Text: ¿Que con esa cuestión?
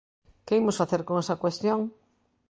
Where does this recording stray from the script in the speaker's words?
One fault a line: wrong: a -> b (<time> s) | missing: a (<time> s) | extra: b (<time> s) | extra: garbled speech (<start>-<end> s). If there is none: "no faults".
extra: imos facer (0.6 s)